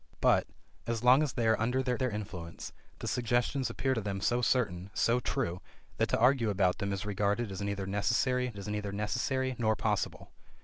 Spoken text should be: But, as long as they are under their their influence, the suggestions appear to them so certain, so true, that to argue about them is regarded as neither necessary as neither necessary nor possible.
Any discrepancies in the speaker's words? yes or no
no